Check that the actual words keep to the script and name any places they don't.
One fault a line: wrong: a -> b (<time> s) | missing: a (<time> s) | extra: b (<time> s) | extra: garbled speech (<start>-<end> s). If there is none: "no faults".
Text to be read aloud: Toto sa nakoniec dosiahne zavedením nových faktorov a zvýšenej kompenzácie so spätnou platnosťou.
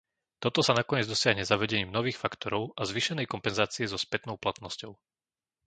no faults